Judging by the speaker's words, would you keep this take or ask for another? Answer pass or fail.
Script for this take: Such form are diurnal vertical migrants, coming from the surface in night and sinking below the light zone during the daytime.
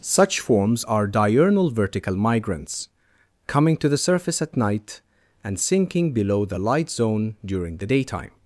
fail